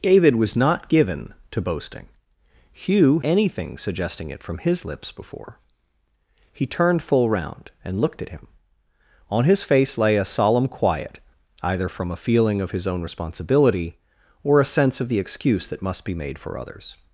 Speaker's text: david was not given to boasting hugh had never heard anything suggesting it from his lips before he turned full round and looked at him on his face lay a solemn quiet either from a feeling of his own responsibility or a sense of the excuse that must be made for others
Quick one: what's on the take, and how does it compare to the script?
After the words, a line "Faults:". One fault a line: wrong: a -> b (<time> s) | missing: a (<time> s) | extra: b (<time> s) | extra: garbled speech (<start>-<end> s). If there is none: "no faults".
david was not given to boasting hugh anything suggesting it from his lips before he turned full round and looked at him on his face lay a solemn quiet either from a feeling of his own responsibility or a sense of the excuse that must be made for others
Faults:
missing: had never heard (3.2 s)